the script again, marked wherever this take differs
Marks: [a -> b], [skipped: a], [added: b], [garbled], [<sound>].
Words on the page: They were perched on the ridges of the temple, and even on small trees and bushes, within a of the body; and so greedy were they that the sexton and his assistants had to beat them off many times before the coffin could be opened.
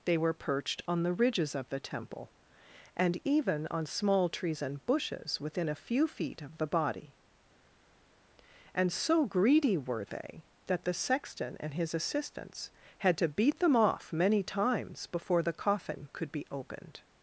They were perched on the ridges of the temple, and even on small trees and bushes, within a [added: few feet] of the body; and so greedy were they that the sexton and his assistants had to beat them off many times before the coffin could be opened.